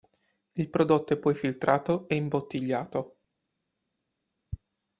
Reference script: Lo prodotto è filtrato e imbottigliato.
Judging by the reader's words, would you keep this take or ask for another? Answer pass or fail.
fail